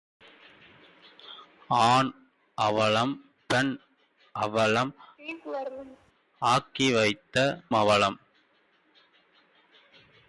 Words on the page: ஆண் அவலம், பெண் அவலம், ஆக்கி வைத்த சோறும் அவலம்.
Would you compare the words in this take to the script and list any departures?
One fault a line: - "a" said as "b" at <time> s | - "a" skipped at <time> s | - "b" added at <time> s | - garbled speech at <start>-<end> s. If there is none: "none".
- "சோறும்" skipped at 7.4 s